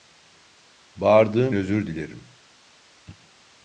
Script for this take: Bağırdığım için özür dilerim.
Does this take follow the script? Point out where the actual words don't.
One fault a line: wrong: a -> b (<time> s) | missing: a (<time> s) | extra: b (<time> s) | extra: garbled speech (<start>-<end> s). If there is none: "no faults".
missing: için (1.6 s)